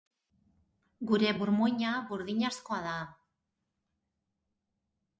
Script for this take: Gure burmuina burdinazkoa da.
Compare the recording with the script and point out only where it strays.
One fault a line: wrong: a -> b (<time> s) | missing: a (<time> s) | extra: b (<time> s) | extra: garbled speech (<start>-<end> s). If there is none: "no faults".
no faults